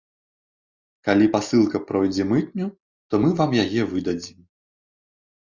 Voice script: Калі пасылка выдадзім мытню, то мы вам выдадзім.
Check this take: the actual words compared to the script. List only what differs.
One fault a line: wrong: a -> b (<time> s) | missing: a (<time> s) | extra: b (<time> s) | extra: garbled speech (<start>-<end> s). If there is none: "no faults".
wrong: выдадзім -> пройдзе (1.9 s)
extra: яе (3.7 s)